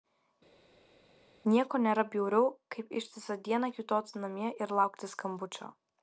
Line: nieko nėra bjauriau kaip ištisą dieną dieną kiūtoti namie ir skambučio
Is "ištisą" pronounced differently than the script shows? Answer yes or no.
no